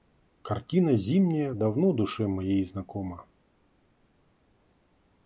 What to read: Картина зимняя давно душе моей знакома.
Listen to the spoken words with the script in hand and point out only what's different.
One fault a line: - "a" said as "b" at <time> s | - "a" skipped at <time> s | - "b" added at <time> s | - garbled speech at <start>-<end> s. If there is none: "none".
none